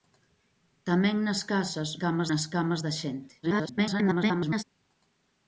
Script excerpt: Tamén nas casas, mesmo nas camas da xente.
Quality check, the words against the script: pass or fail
fail